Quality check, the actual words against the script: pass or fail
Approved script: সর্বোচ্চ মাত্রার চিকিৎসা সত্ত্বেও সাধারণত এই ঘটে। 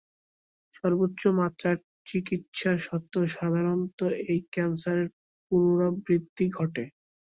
fail